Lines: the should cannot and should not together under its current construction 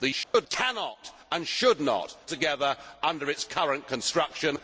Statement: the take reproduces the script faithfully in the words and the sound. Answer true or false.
false